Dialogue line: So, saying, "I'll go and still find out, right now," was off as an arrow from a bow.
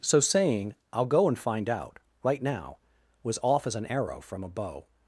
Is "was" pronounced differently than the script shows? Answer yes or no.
no